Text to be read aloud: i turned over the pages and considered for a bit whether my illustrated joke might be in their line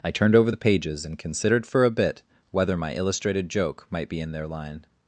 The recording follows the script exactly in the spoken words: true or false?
true